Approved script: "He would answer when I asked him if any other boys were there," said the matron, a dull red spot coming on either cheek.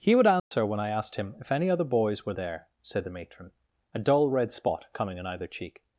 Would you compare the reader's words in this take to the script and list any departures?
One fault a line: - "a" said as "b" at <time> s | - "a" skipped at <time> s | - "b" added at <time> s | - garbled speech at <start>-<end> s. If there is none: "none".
none